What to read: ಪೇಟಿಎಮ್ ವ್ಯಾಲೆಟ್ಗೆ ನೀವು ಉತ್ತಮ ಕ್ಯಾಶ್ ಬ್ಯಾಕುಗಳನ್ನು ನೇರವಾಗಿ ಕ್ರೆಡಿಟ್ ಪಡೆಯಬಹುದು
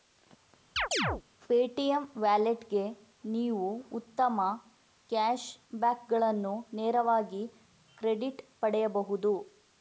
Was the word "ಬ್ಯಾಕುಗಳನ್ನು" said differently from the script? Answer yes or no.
no